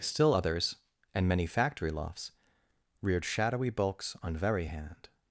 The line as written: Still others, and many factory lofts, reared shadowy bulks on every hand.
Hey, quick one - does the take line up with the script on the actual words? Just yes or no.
no